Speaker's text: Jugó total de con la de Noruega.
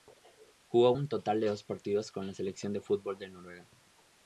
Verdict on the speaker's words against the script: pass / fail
fail